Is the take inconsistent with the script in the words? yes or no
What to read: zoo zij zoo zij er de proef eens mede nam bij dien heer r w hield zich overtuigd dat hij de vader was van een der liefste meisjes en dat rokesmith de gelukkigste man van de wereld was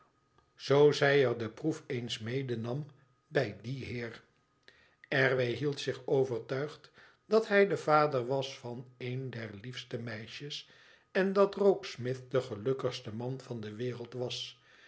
yes